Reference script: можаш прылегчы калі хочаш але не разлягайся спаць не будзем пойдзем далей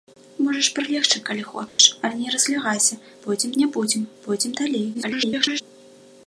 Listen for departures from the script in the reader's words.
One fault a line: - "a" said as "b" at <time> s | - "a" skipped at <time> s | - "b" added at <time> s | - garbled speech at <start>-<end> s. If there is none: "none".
- "спаць" said as "пойдзем" at 3.3 s
- garbled speech at 4.9-5.6 s